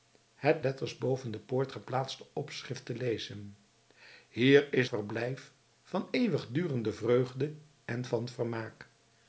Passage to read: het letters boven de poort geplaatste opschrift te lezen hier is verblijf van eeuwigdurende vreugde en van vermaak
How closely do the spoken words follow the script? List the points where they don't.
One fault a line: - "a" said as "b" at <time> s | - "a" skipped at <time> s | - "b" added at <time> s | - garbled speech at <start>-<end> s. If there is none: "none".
none